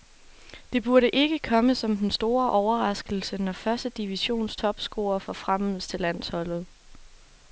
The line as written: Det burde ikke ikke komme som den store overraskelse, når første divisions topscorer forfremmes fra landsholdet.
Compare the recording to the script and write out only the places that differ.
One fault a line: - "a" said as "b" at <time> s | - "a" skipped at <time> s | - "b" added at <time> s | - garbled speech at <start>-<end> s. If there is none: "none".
- "ikke" skipped at 1.4 s
- "fra" said as "til" at 5.9 s